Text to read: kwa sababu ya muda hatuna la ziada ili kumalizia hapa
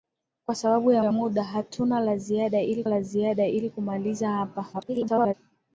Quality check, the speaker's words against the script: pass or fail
fail